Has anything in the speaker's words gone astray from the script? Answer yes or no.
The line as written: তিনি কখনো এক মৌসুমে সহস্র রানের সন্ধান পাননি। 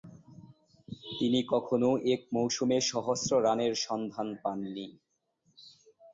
no